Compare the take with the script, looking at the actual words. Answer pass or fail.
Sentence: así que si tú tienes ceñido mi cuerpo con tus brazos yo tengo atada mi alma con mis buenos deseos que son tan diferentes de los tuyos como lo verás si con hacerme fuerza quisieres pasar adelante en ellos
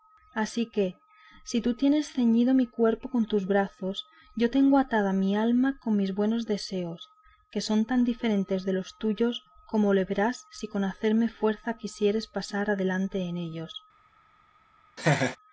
pass